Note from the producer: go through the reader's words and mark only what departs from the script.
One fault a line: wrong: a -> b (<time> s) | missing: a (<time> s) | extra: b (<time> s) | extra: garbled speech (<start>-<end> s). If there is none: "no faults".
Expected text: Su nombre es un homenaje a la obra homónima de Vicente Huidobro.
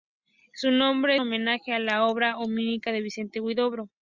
missing: es un (1.1 s)